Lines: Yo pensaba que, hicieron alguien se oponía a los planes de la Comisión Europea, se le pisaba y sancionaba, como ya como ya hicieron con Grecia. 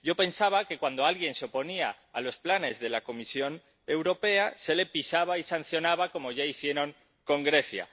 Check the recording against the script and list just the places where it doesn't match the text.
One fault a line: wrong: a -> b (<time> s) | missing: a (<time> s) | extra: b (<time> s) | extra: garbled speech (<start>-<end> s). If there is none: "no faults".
wrong: hicieron -> cuando (0.8 s)
missing: como ya (6.4 s)